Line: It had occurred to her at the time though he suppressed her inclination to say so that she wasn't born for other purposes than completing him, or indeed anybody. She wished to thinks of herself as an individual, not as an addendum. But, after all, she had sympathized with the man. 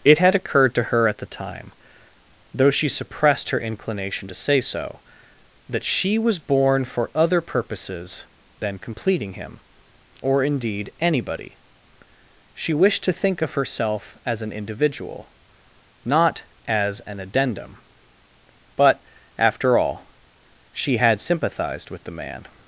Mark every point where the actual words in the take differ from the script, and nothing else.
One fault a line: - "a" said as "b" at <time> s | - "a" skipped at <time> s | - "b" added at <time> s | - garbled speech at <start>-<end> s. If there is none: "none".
- "he" said as "she" at 2.7 s
- "wasn't" said as "was" at 6.2 s
- "thinks" said as "think" at 13.1 s